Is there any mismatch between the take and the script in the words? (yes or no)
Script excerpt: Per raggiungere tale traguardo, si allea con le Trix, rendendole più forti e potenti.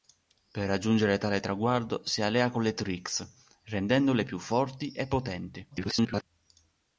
yes